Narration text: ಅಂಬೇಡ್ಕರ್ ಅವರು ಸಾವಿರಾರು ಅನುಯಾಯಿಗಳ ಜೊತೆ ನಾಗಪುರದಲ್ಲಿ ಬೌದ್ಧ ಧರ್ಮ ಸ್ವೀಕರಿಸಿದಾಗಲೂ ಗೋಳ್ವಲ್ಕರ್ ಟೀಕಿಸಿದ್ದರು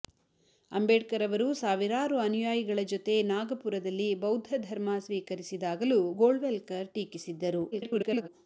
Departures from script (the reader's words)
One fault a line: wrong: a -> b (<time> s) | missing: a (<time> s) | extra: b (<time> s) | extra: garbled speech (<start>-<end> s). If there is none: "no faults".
extra: garbled speech (7.7-8.3 s)